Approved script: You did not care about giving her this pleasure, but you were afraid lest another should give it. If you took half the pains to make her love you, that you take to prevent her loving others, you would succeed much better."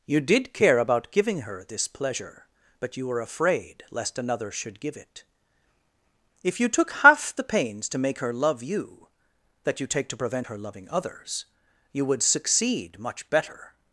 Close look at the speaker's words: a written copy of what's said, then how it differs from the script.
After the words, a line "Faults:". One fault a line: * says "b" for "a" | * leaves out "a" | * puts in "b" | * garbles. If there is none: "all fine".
You did care about giving her this pleasure, but you were afraid lest another should give it. If you took half the pains to make her love you, that you take to prevent her loving others, you would succeed much better."
Faults:
* leaves out "not"